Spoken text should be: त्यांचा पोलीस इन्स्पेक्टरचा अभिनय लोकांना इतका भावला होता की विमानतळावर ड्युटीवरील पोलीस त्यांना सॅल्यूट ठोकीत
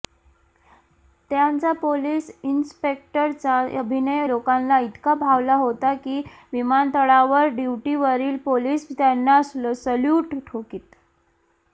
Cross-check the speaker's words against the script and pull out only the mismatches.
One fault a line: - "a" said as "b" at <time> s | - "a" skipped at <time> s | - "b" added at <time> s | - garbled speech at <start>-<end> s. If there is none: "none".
none